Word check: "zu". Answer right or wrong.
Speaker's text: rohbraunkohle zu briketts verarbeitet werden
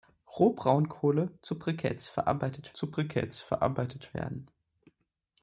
right